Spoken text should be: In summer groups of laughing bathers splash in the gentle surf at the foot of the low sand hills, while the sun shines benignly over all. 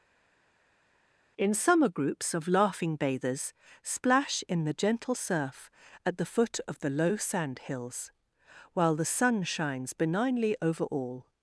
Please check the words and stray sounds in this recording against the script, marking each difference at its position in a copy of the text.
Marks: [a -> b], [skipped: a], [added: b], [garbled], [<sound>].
In summer groups of laughing bathers splash in the gentle surf at the foot of the low sand hills, while the sun shines benignly over all.